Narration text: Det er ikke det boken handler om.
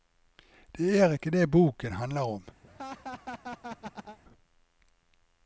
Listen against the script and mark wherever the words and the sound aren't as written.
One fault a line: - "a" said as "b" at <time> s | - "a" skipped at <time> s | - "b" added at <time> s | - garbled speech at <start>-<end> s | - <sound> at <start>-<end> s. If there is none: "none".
- laugh at 2.6-4.2 s